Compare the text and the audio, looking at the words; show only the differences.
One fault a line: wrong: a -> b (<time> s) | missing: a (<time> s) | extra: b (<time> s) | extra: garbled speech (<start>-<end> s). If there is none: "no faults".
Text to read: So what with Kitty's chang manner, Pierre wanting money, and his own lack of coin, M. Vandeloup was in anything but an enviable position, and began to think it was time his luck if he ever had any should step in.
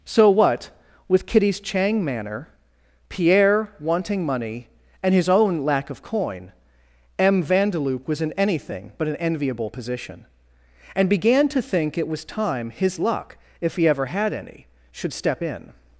no faults